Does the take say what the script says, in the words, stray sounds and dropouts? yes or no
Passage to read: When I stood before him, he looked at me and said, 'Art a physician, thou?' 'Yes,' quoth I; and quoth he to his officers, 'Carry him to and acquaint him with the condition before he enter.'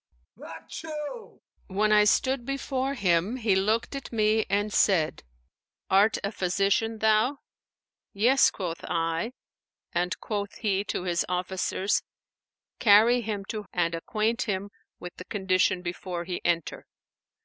no